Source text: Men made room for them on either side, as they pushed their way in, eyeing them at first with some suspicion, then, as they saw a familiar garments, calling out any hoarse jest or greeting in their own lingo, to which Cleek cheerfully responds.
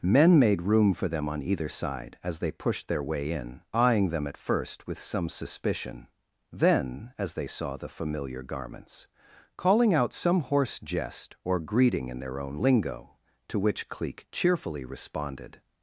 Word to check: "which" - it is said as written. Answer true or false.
true